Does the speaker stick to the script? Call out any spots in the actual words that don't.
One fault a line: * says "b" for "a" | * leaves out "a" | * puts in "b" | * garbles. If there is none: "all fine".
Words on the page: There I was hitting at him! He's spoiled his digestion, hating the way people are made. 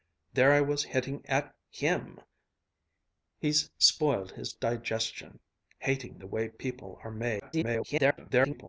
* garbles